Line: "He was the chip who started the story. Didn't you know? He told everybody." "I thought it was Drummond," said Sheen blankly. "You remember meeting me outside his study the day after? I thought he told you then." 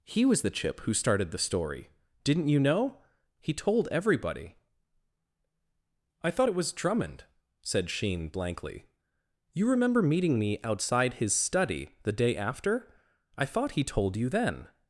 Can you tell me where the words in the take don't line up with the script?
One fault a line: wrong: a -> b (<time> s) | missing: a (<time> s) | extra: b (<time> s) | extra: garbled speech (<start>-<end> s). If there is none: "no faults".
no faults